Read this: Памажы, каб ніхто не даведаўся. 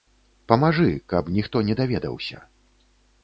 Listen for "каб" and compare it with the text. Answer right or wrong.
right